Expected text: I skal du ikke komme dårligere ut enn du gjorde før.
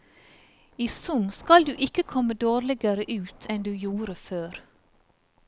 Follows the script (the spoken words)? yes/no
no